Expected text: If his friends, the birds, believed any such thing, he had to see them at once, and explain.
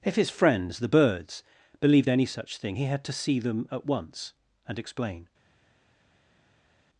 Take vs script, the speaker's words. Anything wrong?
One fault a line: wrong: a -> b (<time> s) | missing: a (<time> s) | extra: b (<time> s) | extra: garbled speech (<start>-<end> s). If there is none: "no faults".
no faults